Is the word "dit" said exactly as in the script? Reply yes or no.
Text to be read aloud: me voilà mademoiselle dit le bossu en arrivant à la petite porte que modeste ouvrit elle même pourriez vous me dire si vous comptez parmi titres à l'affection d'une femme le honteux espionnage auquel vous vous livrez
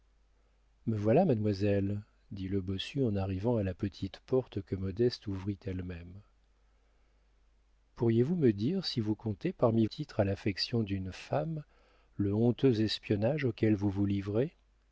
yes